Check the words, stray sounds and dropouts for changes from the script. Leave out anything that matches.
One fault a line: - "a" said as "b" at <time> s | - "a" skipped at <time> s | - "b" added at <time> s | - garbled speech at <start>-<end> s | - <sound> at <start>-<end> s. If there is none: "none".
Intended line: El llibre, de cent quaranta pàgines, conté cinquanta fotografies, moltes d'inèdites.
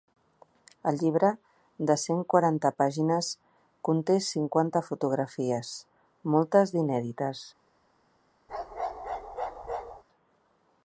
- bark at 8.5-10.0 s